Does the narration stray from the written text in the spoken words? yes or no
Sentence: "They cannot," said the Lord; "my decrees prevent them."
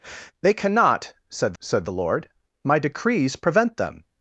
yes